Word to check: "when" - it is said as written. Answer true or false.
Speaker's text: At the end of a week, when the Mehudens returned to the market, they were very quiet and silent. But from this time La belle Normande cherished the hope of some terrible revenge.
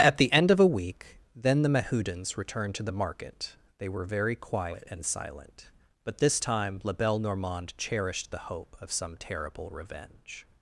false